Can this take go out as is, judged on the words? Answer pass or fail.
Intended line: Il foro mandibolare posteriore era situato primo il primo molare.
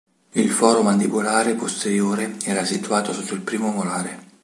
fail